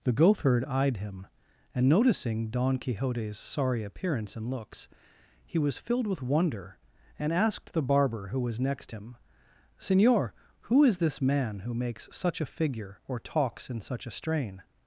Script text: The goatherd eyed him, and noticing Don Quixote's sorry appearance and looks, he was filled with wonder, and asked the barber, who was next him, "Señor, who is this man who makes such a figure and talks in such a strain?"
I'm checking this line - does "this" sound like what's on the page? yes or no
yes